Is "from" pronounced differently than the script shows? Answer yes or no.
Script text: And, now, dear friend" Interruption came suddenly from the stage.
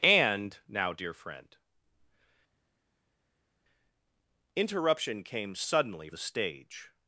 yes